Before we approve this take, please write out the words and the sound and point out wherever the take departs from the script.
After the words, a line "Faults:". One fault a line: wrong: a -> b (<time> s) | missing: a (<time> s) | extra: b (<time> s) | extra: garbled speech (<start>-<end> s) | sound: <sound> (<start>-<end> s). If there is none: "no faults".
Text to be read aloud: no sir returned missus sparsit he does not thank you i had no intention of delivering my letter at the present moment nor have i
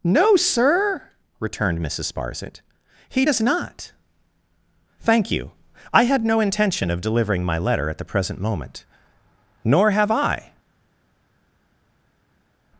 no sir returned missus sparsit he does not thank you i had no intention of delivering my letter at the present moment nor have i
Faults:
no faults